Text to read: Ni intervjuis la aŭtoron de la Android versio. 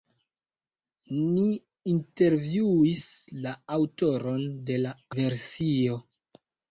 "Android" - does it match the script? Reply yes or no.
no